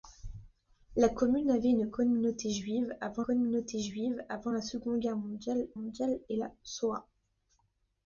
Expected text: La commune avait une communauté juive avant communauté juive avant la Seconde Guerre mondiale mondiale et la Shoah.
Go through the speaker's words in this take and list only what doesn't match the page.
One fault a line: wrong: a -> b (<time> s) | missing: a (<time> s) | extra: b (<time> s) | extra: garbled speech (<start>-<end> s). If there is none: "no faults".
no faults